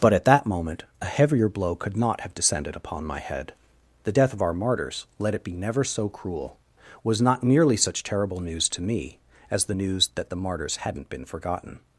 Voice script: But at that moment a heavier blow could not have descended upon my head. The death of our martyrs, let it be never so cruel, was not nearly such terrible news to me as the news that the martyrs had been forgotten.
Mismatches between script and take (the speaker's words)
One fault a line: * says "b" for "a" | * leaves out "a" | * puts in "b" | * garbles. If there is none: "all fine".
* says "hadn't" for "had"